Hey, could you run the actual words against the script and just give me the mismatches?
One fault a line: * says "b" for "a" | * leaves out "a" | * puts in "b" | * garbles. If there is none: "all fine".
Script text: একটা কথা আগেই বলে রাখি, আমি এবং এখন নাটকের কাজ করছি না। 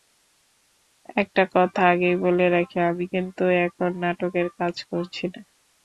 * says "কিন্তু" for "এবং"